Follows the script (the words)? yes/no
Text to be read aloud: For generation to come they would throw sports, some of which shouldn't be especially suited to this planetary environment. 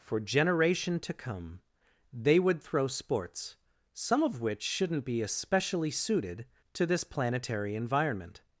yes